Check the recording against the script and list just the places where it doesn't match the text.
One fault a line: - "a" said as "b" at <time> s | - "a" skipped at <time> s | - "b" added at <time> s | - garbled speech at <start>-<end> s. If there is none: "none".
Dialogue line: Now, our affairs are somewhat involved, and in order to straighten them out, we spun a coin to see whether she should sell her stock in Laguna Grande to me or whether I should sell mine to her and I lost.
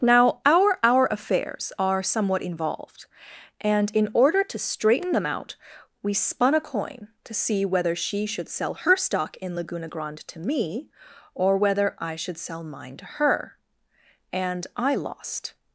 - "our" added at 0.8 s